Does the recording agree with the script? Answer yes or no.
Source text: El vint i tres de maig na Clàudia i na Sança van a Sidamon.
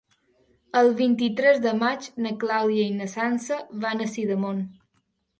yes